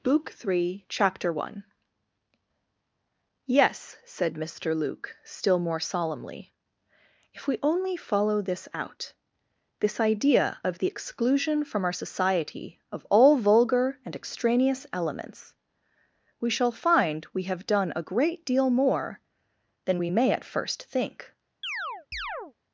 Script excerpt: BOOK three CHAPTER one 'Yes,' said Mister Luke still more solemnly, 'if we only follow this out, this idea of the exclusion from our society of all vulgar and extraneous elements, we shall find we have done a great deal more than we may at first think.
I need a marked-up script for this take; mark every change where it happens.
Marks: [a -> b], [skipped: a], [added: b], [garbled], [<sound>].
BOOK three CHAPTER one 'Yes,' said Mister Luke still more solemnly, 'if we only follow this out, this idea of the exclusion from our society of all vulgar and extraneous elements, we shall find we have done a great deal more than we may at first think. [chirp]